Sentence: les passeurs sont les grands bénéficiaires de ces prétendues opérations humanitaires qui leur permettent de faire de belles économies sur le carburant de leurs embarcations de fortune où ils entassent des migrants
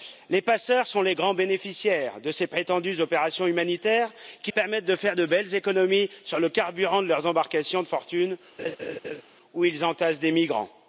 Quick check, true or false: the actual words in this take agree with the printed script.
false